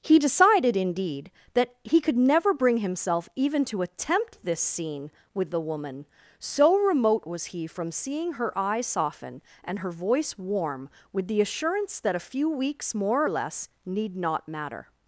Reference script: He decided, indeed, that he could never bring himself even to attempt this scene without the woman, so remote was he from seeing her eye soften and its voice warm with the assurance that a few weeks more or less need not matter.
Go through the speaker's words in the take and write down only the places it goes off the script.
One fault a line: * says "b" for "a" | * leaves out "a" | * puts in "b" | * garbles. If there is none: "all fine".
* says "with" for "without"
* says "her" for "its"